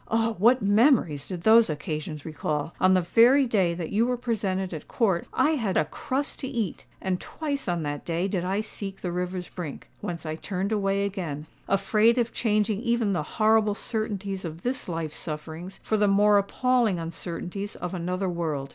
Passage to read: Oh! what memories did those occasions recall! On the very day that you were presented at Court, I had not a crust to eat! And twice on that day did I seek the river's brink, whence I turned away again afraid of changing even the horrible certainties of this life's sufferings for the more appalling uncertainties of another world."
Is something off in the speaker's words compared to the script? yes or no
yes